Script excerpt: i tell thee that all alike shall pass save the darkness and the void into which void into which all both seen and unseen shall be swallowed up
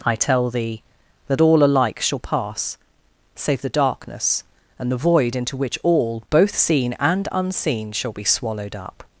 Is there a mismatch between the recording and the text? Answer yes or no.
yes